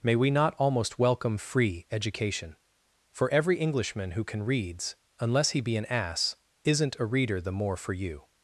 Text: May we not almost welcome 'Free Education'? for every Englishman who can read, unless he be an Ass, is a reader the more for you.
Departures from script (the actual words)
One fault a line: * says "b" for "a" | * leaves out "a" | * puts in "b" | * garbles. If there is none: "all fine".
* says "reads" for "read"
* says "isn't" for "is"